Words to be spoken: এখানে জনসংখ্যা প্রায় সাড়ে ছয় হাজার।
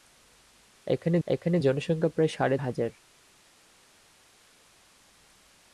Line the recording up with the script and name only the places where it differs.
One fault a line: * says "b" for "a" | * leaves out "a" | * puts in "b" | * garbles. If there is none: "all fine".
* puts in "এখানে"
* leaves out "ছয়"